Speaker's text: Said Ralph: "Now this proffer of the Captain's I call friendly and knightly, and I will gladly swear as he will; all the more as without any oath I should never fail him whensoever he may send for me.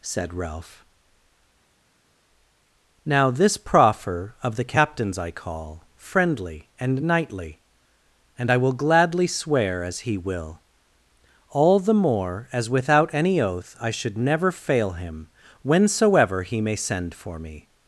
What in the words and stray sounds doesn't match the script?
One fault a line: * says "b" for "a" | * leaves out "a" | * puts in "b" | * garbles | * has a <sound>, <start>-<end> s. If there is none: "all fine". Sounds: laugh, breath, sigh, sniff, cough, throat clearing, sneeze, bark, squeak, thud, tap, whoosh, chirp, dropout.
all fine